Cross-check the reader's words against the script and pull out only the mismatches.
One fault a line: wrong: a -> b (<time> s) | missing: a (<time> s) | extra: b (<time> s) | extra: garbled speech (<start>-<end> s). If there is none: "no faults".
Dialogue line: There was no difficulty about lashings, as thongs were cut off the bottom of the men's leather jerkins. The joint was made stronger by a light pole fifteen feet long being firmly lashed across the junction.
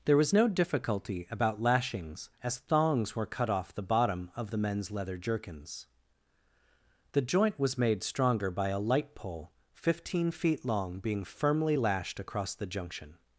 no faults